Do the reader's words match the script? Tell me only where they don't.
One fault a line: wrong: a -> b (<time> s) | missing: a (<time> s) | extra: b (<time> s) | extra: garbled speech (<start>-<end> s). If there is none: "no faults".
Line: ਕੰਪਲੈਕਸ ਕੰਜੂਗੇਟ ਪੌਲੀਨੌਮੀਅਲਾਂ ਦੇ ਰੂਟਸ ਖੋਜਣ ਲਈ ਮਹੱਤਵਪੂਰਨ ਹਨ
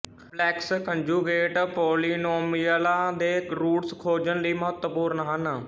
no faults